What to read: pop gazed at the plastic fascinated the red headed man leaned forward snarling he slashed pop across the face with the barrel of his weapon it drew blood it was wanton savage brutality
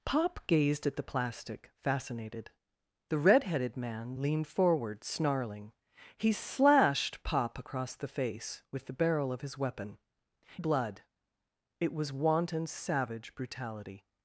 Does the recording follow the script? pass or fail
fail